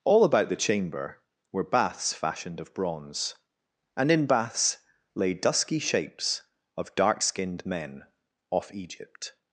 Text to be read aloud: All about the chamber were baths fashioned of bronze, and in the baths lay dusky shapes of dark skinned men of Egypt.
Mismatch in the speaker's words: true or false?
true